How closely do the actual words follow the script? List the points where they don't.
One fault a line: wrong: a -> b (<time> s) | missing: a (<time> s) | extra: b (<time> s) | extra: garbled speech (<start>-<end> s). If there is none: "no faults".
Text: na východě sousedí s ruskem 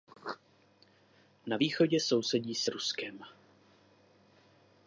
no faults